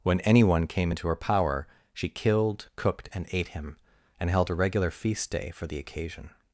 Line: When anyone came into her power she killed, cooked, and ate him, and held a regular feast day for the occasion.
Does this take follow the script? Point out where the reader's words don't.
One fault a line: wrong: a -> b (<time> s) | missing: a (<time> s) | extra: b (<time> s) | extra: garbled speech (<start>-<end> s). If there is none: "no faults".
no faults